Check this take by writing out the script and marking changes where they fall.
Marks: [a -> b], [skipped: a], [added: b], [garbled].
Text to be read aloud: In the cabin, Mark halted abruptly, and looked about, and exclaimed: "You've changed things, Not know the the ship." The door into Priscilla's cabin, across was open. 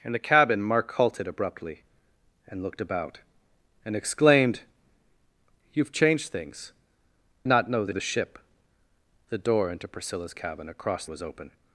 In the cabin, Mark halted abruptly, and looked about, and exclaimed: "You've changed things, Not know the the ship." The door into Priscilla's cabin, across was open.